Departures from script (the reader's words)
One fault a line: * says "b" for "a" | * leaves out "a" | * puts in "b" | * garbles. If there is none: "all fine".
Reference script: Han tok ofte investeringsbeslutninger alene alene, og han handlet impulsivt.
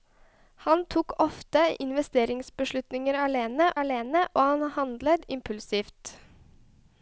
all fine